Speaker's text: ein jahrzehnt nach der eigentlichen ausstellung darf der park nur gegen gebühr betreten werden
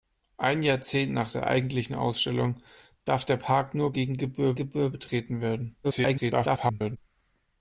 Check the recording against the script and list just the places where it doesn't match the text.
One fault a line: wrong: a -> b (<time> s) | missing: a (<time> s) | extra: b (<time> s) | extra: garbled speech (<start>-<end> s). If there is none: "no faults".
extra: gebühr (4.5 s)
extra: garbled speech (5.8-7.0 s)